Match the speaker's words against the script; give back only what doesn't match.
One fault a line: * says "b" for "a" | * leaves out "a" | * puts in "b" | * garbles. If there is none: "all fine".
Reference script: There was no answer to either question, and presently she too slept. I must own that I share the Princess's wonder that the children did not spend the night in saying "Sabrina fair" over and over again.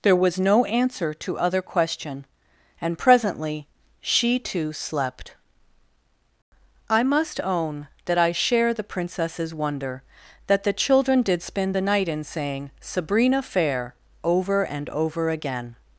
* says "other" for "either"
* leaves out "not"